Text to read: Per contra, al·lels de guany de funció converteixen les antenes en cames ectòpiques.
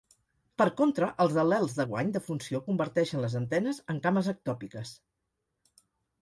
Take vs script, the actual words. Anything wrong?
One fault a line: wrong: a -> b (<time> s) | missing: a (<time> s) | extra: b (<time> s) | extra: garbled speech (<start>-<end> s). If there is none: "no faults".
extra: els (1.2 s)